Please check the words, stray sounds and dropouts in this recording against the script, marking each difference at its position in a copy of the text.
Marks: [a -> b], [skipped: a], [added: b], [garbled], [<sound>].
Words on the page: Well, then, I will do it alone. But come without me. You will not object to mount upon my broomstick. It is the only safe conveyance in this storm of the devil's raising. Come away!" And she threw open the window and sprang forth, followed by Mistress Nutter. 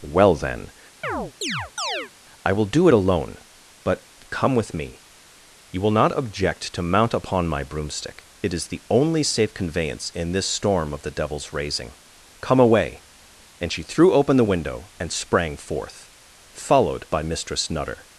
Well, then, [chirp] I will do it alone. But come [without -> with] me. You will not object to mount upon my broomstick. It is the only safe conveyance in this storm of the devil's raising. Come away!" And she threw open the window and sprang forth, followed by Mistress Nutter.